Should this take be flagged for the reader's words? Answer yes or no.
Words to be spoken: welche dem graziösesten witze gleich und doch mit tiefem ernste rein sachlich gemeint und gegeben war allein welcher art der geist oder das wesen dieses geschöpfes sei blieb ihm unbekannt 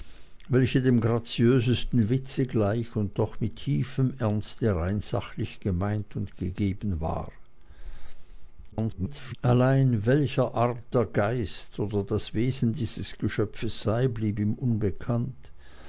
yes